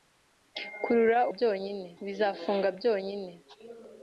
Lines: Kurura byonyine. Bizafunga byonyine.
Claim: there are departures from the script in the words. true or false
false